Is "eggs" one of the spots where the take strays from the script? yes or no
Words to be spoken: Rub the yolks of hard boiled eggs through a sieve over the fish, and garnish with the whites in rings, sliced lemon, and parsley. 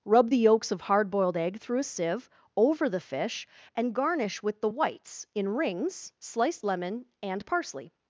yes